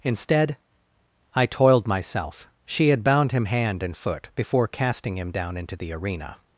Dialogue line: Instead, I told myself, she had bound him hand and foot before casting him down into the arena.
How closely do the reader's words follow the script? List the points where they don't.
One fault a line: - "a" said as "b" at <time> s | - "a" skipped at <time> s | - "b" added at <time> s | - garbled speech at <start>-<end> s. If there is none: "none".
- "told" said as "toiled" at 1.4 s